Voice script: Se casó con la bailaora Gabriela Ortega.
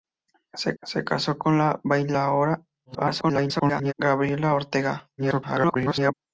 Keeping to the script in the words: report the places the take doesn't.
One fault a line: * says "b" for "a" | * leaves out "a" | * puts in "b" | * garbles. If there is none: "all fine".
* puts in "se"
* garbles
* garbles